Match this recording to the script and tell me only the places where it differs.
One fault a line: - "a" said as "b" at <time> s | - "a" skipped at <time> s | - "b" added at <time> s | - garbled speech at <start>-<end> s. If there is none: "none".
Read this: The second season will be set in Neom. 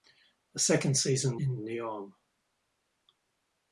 - "will be set" skipped at 1.4 s